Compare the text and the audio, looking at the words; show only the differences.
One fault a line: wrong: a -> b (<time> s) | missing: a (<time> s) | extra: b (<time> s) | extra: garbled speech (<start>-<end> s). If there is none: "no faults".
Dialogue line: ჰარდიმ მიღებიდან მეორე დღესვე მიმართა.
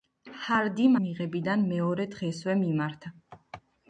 no faults